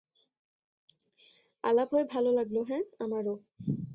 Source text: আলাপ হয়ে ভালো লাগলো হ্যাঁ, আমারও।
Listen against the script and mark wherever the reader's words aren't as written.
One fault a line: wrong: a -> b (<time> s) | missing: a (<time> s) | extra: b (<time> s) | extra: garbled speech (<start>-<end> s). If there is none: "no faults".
no faults